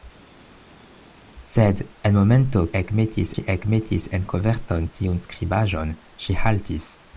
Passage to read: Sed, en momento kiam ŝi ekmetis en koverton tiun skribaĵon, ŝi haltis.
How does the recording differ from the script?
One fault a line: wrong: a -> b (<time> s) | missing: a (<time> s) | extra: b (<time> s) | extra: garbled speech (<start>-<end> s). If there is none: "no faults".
wrong: kiam -> ekmetis (2.8 s)